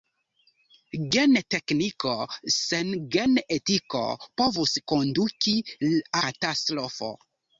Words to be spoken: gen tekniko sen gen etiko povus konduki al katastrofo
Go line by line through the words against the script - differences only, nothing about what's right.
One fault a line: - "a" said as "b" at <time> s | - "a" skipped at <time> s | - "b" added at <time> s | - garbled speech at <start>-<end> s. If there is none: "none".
- "al" skipped at 5.6 s